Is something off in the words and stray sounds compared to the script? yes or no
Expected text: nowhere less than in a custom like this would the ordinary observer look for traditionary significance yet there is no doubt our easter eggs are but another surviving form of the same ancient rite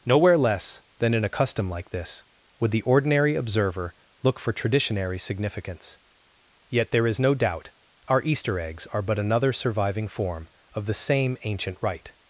no